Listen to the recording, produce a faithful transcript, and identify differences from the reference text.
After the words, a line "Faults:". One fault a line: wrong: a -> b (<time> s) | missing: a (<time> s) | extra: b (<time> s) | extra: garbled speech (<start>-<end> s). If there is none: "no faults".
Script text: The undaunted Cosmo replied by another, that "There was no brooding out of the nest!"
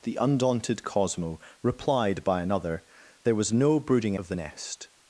The undaunted Cosmo replied by another, "There was no brooding of the nest!"
Faults:
missing: that (2.8 s)
missing: out (4.1 s)